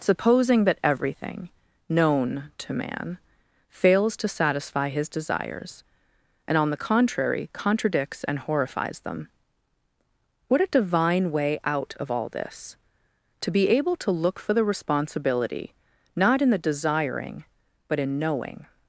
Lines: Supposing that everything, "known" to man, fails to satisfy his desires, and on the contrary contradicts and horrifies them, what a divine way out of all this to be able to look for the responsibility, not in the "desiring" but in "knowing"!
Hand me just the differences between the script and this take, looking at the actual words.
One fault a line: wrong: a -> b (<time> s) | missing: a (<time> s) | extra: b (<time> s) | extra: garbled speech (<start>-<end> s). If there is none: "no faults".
no faults